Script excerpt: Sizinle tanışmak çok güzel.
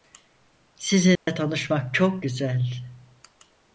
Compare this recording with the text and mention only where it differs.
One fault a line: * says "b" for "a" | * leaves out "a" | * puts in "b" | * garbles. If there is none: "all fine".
all fine